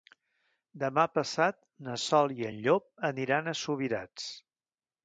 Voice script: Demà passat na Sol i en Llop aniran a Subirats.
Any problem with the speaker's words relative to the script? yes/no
no